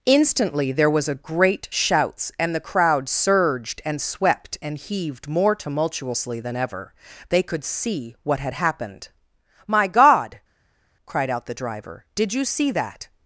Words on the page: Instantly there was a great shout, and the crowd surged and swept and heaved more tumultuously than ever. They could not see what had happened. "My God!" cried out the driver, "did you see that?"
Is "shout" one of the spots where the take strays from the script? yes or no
yes